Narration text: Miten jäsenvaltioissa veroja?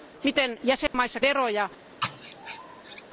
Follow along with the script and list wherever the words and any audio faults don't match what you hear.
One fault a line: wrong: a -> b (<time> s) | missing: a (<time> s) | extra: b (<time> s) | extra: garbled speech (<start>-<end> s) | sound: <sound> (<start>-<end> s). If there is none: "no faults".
sound: dropout (0.9-0.9 s)
sound: sneeze (2.0-3.0 s)